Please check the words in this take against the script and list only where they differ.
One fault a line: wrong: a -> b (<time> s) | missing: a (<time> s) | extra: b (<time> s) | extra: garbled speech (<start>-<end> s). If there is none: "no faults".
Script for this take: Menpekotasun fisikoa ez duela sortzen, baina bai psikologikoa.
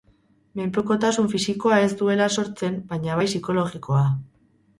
no faults